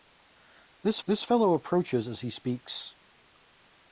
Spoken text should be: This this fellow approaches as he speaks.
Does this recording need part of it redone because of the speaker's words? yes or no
no